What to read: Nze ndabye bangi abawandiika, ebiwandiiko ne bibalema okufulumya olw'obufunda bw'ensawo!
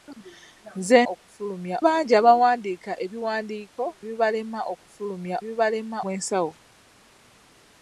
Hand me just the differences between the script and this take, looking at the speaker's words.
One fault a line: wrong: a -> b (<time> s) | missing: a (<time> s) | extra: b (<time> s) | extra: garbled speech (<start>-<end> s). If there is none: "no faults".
wrong: ndabye -> okufulumya (1.1 s)
missing: ne (3.8 s)
wrong: olw'obufunda -> bibalema (5.4 s)